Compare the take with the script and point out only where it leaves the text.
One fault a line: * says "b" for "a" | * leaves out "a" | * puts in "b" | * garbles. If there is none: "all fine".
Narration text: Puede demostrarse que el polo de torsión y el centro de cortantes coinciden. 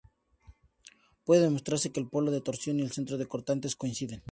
all fine